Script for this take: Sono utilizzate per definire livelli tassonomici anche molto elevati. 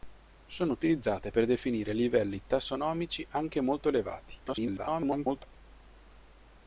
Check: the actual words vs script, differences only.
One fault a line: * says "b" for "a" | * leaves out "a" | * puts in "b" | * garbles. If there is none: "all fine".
* garbles